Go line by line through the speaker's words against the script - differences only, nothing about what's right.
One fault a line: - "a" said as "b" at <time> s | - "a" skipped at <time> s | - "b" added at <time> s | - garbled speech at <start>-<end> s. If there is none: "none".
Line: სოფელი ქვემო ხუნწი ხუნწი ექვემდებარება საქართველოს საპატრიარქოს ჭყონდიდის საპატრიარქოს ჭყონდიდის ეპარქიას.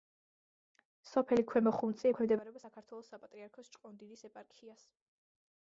- "ხუნწი" skipped at 2.1 s
- "საპატრიარქოს ჭყონდიდის" skipped at 4.3 s